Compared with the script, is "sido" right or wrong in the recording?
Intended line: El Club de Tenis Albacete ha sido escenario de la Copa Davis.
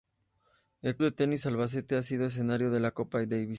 right